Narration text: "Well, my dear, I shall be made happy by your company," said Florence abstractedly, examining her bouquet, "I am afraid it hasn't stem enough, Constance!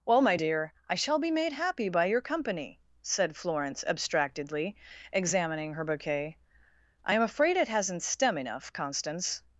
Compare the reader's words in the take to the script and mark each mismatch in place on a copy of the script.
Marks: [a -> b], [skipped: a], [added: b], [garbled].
"Well, my dear, I shall be made happy by your company," said Florence abstractedly, examining her bouquet, "I am afraid it hasn't stem enough, Constance!